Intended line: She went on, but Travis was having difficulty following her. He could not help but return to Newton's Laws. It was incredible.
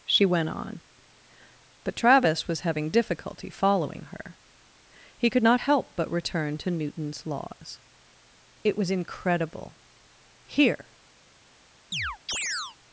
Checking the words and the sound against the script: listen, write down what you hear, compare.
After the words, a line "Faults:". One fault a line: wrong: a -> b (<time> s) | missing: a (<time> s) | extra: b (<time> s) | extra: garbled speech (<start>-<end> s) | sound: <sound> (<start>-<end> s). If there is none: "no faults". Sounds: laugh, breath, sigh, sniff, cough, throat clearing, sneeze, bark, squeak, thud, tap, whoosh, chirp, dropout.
She went on, but Travis was having difficulty following her. He could not help but return to Newton's Laws. It was incredible. Here
Faults:
extra: Here (10.5 s)
sound: chirp (11.9-12.8 s)